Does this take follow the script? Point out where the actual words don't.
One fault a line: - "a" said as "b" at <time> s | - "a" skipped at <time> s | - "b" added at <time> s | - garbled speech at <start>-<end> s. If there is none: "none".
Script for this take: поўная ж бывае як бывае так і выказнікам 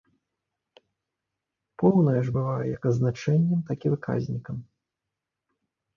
- "бывае" said as "азначэннем" at 2.9 s